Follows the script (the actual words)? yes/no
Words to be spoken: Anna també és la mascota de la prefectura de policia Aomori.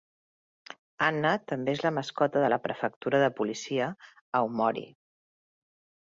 yes